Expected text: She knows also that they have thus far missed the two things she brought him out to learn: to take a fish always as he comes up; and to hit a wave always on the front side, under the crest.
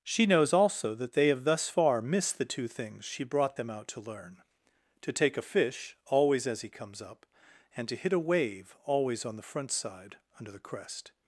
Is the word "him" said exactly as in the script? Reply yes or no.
no